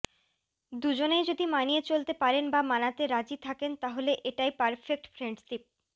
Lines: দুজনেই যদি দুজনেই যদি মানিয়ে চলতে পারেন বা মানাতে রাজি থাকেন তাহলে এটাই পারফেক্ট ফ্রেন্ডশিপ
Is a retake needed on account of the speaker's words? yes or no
yes